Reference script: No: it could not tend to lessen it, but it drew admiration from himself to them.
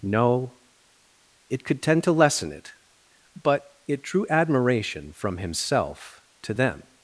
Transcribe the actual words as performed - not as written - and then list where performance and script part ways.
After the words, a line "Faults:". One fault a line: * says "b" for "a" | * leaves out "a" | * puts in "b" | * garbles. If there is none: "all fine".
No: it could tend to lessen it, but it drew admiration from himself to them.
Faults:
* leaves out "not"